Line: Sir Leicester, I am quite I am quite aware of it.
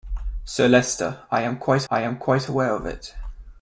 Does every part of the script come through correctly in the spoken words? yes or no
yes